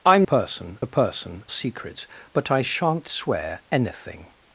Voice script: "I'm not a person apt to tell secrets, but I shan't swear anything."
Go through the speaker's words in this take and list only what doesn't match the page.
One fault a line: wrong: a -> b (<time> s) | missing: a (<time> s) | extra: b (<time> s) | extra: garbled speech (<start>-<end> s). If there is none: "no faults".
wrong: not -> person (0.2 s)
missing: apt to tell (1.4 s)